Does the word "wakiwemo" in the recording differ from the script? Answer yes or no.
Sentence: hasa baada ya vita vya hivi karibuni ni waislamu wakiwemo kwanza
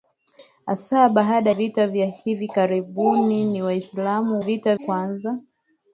yes